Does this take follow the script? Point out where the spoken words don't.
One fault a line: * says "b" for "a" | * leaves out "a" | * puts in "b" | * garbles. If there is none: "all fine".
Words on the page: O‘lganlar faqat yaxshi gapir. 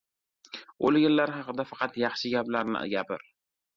* puts in "haqida"
* puts in "gaplarni"